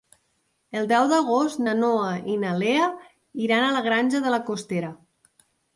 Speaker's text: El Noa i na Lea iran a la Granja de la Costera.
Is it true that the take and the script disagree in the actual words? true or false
true